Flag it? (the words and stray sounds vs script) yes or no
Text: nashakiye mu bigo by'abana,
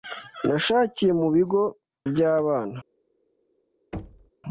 yes